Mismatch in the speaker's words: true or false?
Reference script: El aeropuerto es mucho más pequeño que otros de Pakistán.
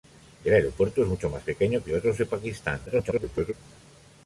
true